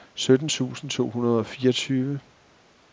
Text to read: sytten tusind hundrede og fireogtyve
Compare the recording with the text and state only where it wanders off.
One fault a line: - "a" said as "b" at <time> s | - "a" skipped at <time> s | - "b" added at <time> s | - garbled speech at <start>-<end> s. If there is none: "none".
- "to" added at 0.9 s